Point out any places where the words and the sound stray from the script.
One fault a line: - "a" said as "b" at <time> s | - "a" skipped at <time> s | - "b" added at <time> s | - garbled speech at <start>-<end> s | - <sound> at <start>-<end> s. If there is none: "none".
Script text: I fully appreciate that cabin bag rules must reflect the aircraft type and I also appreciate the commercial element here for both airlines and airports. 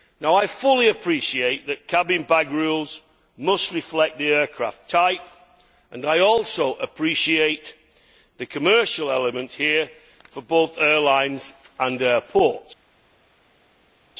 none